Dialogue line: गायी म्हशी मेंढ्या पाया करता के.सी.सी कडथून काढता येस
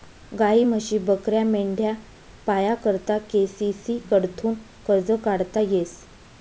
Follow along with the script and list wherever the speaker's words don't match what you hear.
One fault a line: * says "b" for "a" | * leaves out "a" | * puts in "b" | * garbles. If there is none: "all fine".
* puts in "बकऱ्या"
* puts in "कर्ज"